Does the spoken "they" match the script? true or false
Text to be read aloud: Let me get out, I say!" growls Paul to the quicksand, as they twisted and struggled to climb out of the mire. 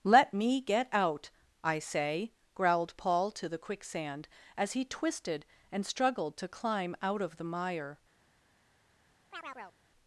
false